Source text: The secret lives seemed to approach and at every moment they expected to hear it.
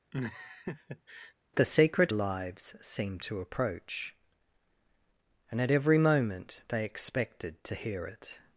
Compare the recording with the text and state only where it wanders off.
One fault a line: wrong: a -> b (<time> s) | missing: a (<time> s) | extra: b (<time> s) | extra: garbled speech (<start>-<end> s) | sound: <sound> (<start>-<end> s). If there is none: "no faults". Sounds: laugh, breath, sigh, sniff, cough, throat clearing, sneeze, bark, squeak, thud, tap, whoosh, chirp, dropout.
sound: laugh (0.1-1.3 s)